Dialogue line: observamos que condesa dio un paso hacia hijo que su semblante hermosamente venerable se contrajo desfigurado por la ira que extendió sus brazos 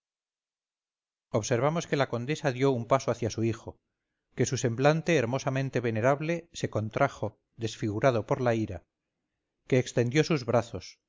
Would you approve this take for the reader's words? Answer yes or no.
no